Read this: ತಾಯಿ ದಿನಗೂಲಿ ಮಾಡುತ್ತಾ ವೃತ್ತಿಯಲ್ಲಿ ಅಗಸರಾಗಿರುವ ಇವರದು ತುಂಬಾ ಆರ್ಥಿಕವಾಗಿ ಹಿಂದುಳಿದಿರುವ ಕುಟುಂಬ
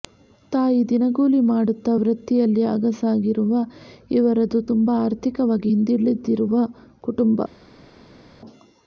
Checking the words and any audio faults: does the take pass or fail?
pass